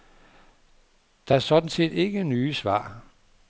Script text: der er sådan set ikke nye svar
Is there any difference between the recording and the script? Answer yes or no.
no